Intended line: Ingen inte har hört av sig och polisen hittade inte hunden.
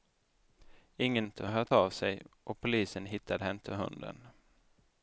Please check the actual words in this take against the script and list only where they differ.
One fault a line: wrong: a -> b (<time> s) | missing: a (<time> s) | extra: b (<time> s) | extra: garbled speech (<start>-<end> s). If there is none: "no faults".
no faults